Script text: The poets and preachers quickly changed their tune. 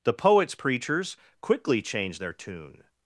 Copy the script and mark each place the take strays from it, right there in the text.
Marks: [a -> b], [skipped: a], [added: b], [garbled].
The poets [skipped: and] preachers quickly changed their tune.